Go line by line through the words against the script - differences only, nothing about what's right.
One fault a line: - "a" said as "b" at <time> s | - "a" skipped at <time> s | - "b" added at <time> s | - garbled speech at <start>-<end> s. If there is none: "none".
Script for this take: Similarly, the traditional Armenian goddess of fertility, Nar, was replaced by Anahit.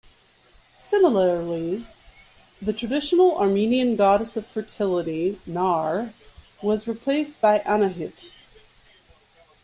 none